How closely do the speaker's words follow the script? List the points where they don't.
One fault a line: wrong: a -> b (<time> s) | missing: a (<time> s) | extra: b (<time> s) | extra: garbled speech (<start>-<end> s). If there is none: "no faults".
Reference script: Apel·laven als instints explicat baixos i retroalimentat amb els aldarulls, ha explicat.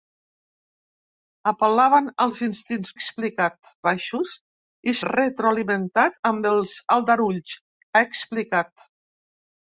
no faults